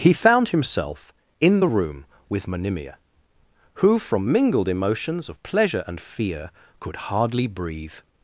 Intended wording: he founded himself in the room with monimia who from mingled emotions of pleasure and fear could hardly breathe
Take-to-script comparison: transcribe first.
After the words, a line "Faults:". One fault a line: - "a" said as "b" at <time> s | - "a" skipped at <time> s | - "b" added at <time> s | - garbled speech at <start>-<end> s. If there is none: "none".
he found himself in the room with monimia who from mingled emotions of pleasure and fear could hardly breathe
Faults:
- "founded" said as "found" at 0.1 s